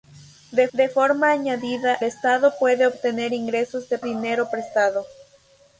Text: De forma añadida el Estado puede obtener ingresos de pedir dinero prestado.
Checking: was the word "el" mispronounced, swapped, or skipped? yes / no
yes